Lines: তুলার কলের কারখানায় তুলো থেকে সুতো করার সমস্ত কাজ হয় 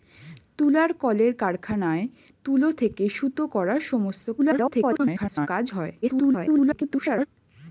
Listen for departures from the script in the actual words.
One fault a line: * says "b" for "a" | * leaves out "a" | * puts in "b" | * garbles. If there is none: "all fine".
* garbles
* garbles